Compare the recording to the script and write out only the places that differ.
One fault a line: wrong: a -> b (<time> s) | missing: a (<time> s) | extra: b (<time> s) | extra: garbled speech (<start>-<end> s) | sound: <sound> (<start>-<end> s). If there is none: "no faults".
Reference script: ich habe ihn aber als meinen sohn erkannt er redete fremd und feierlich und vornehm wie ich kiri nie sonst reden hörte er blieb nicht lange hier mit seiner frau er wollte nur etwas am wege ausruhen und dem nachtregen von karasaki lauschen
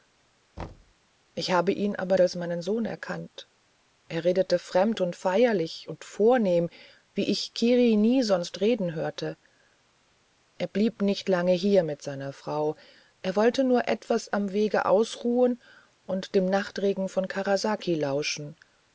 sound: thud (0.6-0.9 s)